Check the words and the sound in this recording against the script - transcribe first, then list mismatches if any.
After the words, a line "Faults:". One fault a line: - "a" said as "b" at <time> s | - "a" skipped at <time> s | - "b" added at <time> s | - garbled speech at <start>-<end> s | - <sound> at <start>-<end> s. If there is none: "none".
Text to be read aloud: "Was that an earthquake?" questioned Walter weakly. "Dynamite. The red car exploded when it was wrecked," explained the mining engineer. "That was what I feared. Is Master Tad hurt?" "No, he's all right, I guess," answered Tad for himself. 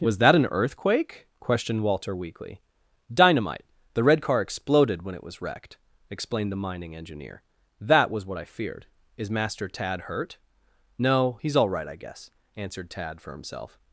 "Was that an earthquake?" questioned Walter weakly. "Dynamite. The red car exploded when it was wrecked," explained the mining engineer. "That was what I feared. Is Master Tad hurt?" "No, he's all right, I guess," answered Tad for himself.
Faults:
none